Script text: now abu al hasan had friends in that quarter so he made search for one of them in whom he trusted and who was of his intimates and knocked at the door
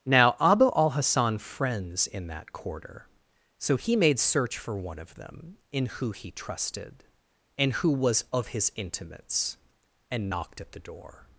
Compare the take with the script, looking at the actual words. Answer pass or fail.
fail